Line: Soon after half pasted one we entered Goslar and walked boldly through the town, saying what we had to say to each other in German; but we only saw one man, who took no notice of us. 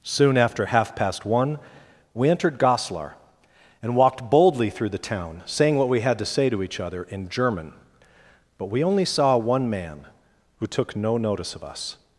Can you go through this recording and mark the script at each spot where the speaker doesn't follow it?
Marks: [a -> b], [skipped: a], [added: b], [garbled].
Soon after half [pasted -> past] one we entered Goslar and walked boldly through the town, saying what we had to say to each other in German; but we only saw one man, who took no notice of us.